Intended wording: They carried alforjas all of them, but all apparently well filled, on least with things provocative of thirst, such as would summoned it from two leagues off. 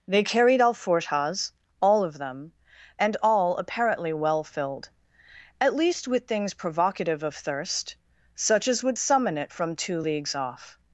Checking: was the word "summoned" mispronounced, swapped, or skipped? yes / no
yes